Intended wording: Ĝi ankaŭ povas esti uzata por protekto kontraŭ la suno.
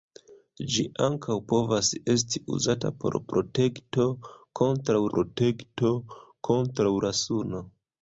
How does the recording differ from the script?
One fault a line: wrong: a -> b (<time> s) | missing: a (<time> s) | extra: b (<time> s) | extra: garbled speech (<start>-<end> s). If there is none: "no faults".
extra: protekto kontraŭ (5.1 s)